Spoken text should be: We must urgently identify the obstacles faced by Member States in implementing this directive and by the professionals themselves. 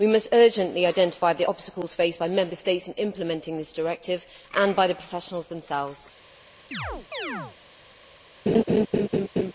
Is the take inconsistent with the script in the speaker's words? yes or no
no